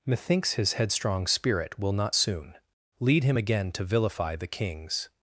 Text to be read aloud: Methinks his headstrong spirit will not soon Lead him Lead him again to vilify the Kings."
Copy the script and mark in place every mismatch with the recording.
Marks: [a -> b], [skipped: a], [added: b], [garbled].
Methinks his headstrong spirit will not soon Lead him [skipped: Lead him] again to vilify the Kings."